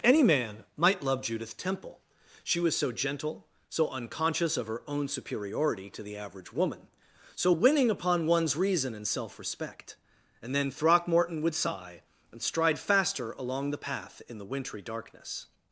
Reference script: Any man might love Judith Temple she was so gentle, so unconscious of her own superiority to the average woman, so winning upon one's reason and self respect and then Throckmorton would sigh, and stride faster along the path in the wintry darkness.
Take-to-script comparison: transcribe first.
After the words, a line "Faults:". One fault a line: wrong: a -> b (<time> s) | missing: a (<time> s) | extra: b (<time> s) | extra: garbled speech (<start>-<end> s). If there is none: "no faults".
Any man might love Judith Temple she was so gentle, so unconscious of her own superiority to the average woman, so winning upon one's reason and self respect and then Throckmorton would sigh, and stride faster along the path in the wintry darkness.
Faults:
no faults